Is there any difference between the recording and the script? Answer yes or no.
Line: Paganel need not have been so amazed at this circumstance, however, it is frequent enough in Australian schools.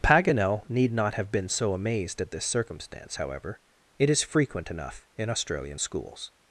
no